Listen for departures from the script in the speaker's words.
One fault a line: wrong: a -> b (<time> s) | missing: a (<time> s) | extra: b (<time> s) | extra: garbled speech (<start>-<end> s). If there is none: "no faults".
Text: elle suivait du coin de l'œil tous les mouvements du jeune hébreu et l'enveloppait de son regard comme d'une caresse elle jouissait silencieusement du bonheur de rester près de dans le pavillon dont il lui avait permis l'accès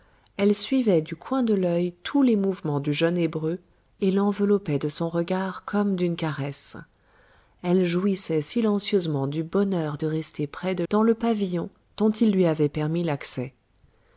no faults